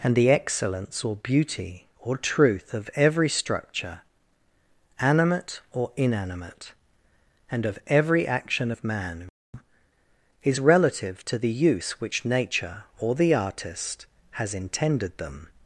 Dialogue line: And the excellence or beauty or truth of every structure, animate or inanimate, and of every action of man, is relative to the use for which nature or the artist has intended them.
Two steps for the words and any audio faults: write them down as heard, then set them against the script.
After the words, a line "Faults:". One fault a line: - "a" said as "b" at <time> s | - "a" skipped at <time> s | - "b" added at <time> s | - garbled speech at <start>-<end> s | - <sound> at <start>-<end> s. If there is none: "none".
And the excellence or beauty or truth of every structure, animate or inanimate, and of every action of man, is relative to the use which nature or the artist has intended them.
Faults:
- "for" skipped at 11.9 s